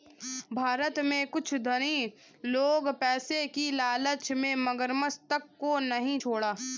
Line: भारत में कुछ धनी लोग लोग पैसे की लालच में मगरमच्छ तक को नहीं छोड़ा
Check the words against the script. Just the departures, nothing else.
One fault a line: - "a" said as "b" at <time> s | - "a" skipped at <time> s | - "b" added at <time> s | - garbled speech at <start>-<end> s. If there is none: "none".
- "लोग" skipped at 2.9 s